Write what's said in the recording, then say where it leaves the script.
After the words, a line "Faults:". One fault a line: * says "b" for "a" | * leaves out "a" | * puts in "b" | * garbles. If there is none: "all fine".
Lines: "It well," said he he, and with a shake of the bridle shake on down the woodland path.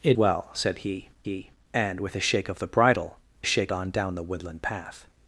"It well," said he he, and with a shake of the bridle shake on down the woodland path.
Faults:
all fine